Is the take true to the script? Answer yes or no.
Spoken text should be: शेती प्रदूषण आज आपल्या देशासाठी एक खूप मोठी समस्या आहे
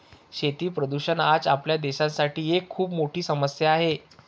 yes